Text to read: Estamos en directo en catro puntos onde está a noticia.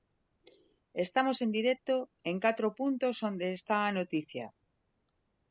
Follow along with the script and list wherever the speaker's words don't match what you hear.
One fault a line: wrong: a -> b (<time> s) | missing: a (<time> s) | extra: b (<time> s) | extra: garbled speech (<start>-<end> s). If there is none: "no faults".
no faults